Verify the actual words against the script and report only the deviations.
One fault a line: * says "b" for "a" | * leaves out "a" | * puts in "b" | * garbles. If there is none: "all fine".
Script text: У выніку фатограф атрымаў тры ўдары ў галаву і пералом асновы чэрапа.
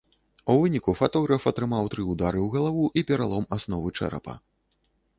all fine